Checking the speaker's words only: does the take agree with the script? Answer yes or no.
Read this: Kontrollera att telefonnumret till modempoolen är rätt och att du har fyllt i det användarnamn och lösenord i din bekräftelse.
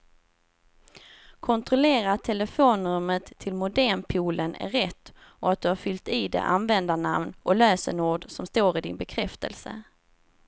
no